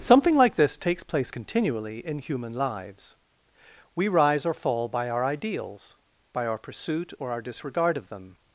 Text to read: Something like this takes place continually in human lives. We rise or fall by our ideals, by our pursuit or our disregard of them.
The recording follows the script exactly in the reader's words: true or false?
true